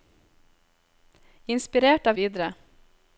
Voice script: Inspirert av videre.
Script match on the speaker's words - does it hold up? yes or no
yes